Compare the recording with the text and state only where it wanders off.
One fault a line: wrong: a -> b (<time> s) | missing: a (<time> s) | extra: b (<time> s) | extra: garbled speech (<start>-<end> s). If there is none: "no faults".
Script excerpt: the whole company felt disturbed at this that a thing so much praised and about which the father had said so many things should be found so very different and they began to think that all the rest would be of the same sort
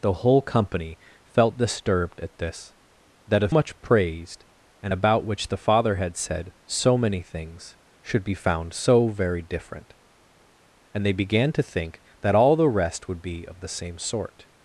missing: thing so (3.5 s)